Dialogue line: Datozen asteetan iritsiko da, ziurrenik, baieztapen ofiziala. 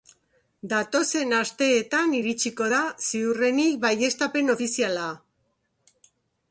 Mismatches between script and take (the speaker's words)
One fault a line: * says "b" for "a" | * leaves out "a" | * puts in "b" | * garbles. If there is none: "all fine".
all fine